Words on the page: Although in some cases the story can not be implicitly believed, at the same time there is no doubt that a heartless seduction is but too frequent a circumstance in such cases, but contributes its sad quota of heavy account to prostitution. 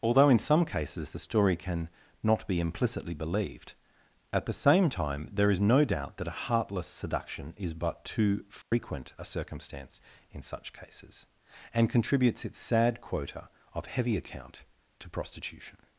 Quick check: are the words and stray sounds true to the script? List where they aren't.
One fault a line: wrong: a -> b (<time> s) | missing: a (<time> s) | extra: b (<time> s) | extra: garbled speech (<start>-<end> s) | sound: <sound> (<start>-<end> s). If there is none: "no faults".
sound: dropout (8.6-8.7 s)
wrong: but -> and (11.7 s)